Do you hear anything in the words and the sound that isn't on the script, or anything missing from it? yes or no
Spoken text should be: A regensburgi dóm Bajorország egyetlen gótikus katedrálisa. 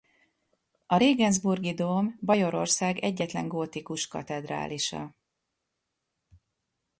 no